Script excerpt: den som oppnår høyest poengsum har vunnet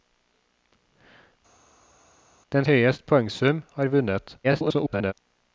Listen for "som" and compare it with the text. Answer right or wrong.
wrong